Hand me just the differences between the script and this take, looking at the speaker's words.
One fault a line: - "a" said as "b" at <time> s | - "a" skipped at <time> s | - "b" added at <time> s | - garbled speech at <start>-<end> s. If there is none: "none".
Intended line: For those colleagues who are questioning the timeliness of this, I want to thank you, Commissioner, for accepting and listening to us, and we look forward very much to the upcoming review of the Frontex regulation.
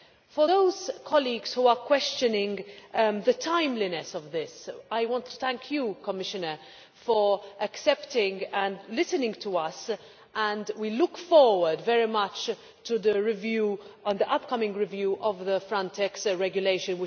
none